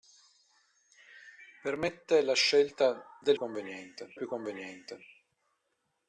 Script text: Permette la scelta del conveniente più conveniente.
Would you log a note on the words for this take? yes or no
no